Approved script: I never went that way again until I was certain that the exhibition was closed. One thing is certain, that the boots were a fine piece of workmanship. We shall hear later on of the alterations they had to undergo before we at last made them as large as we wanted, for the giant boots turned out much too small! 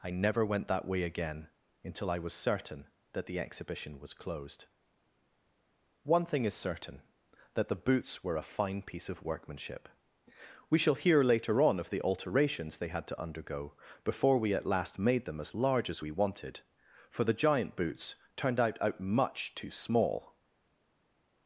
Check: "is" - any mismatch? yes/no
no